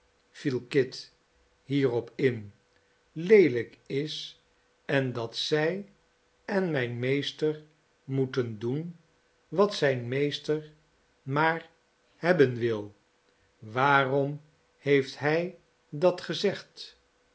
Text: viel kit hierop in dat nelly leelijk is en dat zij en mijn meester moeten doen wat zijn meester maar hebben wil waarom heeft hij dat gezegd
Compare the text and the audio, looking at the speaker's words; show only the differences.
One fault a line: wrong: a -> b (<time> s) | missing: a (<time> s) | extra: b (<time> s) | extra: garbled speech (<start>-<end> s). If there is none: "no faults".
missing: dat nelly (2.5 s)